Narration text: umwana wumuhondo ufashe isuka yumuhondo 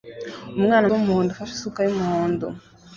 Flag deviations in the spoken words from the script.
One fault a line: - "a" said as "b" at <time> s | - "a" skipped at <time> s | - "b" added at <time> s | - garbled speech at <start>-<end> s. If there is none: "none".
none